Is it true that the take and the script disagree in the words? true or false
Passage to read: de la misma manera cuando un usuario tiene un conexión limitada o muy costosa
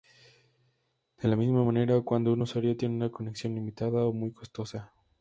true